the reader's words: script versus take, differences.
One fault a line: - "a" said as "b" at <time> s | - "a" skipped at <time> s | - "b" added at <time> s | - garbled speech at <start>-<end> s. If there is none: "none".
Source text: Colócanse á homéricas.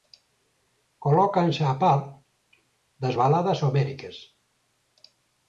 - "par das baladas" added at 1.8 s